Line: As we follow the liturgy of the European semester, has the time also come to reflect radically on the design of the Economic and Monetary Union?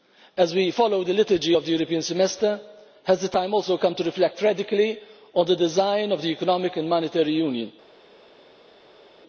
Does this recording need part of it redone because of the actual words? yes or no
no